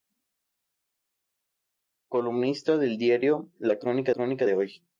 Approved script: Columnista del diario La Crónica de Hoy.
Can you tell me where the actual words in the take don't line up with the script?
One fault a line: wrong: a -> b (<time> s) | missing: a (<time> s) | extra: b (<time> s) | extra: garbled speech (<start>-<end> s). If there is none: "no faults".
extra: Crónica (4.1 s)